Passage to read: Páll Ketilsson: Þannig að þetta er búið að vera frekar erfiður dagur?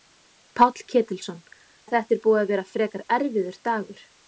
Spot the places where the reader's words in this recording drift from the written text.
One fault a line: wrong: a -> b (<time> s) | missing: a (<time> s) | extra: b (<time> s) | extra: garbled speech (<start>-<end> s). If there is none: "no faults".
missing: Þannig (1.4 s)